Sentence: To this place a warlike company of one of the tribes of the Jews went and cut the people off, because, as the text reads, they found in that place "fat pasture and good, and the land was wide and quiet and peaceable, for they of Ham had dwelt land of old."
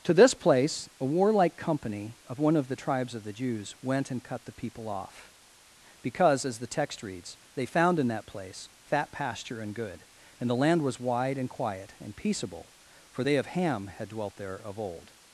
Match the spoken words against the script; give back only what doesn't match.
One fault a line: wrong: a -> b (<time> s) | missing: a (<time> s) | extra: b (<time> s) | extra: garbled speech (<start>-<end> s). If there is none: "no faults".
wrong: land -> there (14.4 s)